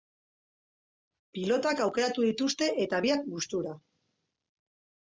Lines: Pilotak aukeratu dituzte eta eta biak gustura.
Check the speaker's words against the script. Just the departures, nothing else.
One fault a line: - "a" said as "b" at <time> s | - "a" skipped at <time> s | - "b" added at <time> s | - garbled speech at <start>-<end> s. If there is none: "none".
- "eta" skipped at 3.0 s